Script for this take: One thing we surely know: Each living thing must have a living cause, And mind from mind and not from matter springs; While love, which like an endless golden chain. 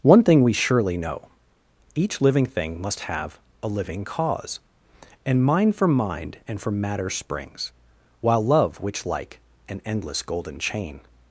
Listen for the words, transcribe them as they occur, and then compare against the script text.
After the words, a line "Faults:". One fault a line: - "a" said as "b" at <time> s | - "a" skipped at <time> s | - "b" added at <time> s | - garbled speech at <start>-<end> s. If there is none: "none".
One thing we surely know: Each living thing must have a living cause, And mind from mind and from matter springs; While love, which like an endless golden chain.
Faults:
- "not" skipped at 6.6 s